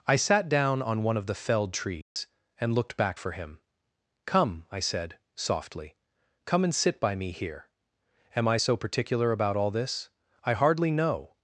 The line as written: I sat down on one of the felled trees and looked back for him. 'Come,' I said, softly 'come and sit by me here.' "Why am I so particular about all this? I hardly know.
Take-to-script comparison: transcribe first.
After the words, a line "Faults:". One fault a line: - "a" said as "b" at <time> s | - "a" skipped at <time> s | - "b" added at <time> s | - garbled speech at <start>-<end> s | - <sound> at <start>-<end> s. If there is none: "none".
I sat down on one of the felled trees and looked back for him. 'Come,' I said, softly 'come and sit by me here.' "am I so particular about all this? I hardly know.
Faults:
- dropout at 2.0-2.2 s
- "Why" skipped at 7.7 s